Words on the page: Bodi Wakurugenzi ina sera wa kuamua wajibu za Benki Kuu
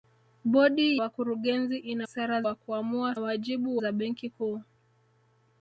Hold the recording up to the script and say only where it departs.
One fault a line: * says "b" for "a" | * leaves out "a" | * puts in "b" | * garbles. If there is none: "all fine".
all fine